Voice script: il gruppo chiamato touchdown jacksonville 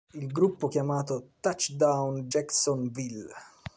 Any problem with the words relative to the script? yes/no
no